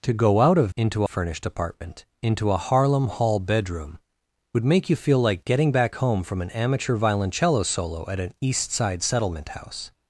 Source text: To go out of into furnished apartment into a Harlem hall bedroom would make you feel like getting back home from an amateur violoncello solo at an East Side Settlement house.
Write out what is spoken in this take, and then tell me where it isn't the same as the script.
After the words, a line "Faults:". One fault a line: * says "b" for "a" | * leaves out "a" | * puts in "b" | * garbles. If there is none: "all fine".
To go out of into furnished apartment into a Harlem hall bedroom would make you feel like getting back home from an amateur violoncello solo at an East Side Settlement house.
Faults:
all fine